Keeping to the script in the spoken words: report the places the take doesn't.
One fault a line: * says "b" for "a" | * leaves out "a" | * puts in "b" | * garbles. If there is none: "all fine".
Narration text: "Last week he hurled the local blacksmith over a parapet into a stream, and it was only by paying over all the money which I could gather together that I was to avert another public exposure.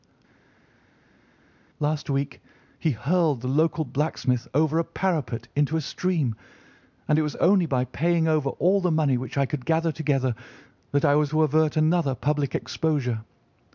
all fine